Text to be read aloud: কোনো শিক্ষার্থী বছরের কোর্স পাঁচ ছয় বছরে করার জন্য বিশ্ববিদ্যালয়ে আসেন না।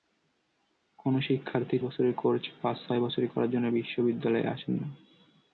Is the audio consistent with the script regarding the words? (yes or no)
yes